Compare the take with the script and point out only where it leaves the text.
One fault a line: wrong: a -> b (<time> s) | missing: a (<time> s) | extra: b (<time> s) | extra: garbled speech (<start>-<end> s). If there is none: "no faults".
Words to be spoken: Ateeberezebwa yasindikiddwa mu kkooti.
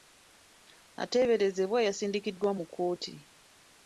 no faults